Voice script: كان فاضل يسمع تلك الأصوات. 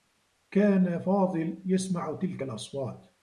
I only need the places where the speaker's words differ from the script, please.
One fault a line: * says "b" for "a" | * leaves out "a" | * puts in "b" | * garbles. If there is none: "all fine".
all fine